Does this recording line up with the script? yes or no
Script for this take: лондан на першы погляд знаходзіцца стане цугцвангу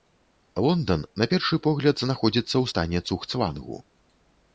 no